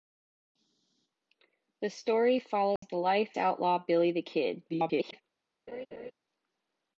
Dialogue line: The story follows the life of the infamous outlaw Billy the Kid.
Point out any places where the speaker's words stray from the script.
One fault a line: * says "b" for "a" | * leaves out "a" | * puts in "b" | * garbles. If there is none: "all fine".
* leaves out "of the infamous"
* garbles